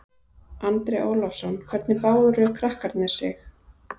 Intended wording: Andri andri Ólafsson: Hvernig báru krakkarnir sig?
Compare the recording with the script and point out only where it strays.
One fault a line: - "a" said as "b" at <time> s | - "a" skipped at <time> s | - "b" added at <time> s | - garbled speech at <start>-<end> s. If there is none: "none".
- "andri" skipped at 1.0 s